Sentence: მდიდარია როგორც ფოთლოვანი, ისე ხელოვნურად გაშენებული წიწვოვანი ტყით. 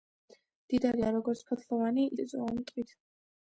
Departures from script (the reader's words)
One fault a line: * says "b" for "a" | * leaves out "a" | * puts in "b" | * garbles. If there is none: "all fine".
* leaves out "ისე ხელოვნურად გაშენებული"